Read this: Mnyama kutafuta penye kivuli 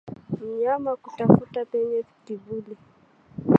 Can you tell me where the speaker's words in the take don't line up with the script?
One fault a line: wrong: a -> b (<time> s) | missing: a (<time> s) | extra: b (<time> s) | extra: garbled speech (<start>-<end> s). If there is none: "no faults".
no faults